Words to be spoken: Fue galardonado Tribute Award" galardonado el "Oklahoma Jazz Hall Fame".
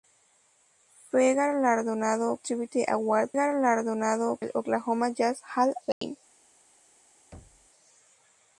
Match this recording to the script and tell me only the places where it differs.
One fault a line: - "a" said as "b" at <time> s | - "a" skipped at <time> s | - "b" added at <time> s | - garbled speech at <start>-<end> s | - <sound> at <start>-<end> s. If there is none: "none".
- dropout at 5.9-6.0 s
- thud at 7.3-7.7 s